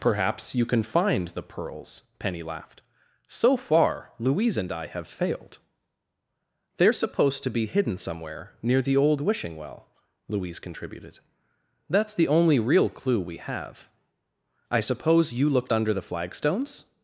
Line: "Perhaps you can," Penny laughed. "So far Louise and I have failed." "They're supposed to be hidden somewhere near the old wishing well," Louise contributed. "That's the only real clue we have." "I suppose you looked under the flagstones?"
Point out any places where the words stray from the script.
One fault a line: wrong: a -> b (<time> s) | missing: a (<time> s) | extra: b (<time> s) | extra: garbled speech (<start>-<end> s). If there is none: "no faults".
extra: find the pearls (0.8 s)